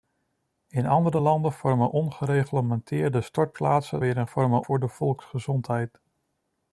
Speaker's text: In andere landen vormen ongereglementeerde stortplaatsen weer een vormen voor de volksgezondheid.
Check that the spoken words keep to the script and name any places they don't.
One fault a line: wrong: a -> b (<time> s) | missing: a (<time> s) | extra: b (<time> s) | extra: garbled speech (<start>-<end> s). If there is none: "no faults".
no faults